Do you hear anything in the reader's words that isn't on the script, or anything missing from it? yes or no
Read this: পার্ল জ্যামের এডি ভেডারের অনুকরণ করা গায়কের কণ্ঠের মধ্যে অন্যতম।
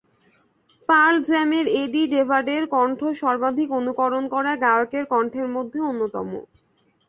yes